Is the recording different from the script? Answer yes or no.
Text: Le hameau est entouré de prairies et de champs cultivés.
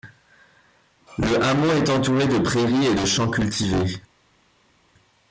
no